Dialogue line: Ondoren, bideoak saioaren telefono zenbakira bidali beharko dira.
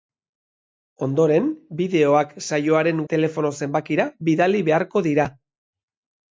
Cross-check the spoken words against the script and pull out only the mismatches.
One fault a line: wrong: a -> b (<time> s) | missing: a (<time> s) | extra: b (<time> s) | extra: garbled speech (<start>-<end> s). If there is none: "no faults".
no faults